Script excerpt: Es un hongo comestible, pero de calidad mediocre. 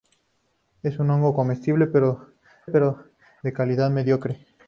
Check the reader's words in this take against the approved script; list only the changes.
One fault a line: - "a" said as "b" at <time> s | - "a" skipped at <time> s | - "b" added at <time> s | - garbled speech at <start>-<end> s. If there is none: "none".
- "pero" added at 2.7 s